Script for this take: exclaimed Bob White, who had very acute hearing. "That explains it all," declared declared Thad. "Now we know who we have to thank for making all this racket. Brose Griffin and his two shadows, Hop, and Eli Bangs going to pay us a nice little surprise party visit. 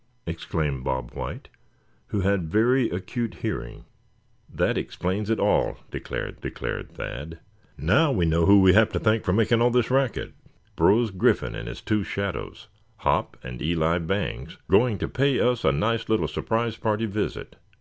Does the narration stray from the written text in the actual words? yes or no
no